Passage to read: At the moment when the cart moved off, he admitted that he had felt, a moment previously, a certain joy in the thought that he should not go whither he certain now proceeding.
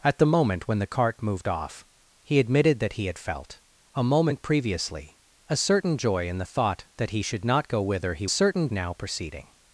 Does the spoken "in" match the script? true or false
true